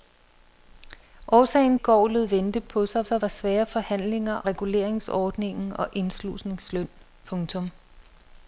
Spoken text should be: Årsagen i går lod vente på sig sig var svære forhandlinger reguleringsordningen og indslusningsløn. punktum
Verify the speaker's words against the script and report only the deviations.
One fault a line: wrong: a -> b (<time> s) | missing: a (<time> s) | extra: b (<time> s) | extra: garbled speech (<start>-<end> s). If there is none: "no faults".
no faults